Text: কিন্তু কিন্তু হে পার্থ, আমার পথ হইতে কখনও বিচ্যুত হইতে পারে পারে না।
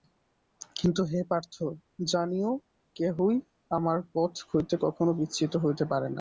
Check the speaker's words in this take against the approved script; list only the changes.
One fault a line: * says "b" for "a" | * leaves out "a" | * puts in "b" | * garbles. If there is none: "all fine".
* leaves out "কিন্তু"
* puts in "জানিও কেহই"
* leaves out "পারে"